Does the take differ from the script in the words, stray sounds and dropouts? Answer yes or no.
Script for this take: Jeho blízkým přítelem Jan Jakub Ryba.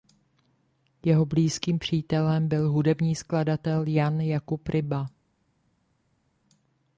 yes